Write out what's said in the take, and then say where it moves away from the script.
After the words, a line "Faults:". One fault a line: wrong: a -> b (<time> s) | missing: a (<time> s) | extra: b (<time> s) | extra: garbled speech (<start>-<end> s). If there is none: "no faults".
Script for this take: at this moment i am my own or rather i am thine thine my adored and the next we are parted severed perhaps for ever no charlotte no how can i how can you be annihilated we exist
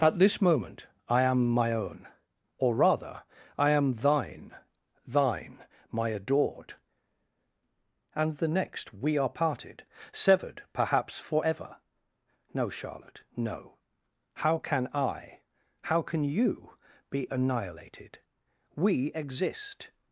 at this moment i am my own or rather i am thine thine my adored and the next we are parted severed perhaps for ever no charlotte no how can i how can you be annihilated we exist
Faults:
no faults